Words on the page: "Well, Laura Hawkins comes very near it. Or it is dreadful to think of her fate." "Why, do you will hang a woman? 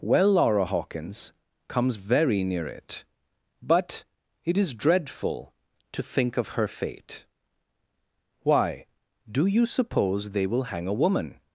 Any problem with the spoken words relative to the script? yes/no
yes